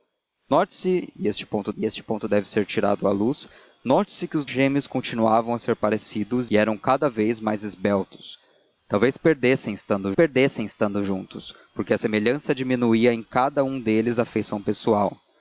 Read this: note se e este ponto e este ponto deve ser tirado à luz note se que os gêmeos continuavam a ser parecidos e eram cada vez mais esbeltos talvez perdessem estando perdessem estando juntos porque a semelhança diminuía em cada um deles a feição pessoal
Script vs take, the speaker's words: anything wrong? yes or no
no